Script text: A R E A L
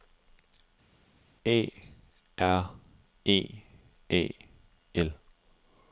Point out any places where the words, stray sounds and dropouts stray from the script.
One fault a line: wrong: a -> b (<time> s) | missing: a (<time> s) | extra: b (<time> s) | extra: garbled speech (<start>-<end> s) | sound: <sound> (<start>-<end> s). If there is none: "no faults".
no faults